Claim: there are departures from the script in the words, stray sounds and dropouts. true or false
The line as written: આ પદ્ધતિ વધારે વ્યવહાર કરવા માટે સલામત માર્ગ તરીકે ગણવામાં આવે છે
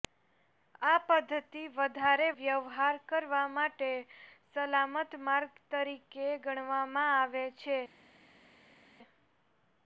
false